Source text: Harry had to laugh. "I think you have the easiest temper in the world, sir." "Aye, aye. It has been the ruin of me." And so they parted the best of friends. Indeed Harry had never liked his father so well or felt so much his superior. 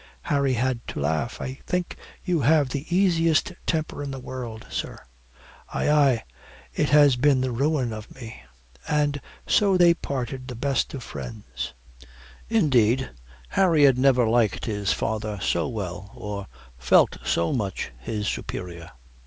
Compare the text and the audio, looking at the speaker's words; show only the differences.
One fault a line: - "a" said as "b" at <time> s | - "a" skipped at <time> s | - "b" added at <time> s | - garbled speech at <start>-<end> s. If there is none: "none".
none